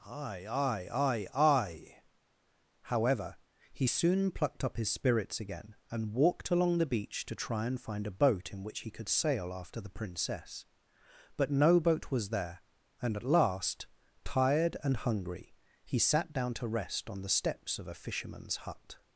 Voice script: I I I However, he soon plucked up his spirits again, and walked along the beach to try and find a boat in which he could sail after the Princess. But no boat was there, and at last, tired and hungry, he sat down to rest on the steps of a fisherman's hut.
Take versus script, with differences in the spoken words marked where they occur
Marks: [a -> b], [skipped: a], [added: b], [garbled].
[I I I -> aye aye aye aye] However, he soon plucked up his spirits again, and walked along the beach to try and find a boat in which he could sail after the Princess. But no boat was there, and at last, tired and hungry, he sat down to rest on the steps of a fisherman's hut.